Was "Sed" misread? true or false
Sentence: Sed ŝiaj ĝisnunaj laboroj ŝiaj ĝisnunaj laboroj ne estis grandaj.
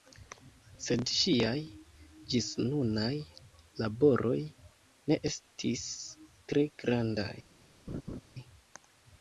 false